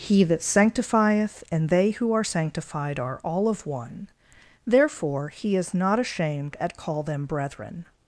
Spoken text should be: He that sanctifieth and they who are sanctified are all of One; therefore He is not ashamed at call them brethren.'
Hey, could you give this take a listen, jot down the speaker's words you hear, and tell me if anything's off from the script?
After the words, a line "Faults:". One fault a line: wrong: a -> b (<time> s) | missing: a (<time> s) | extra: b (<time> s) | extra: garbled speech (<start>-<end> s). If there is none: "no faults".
He that sanctifieth and they who are sanctified are all of One; therefore He is not ashamed at call them brethren.'
Faults:
no faults